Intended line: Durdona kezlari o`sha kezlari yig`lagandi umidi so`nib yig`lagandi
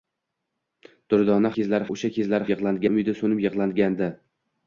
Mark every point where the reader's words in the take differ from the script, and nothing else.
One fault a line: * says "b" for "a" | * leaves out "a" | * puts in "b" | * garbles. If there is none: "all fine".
all fine